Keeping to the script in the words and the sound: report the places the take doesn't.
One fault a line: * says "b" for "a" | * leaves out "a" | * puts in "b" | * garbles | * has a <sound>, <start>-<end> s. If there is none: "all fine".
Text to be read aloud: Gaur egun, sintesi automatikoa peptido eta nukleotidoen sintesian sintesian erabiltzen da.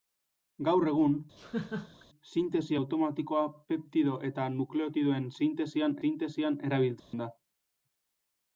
* has a laugh, 1.4-2.1 s
* has a dropout, 7.0-7.1 s